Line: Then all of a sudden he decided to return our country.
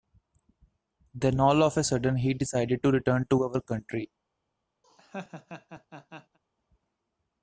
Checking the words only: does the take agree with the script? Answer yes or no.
no